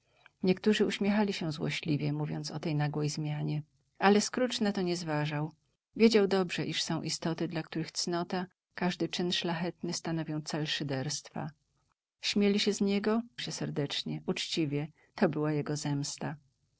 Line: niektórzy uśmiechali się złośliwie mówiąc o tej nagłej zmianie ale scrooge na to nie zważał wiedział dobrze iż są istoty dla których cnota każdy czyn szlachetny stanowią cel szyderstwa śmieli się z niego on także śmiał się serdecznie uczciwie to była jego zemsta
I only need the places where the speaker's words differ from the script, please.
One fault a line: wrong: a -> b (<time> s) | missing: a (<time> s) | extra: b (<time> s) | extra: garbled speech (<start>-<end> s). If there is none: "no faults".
missing: on także śmiał (13.2 s)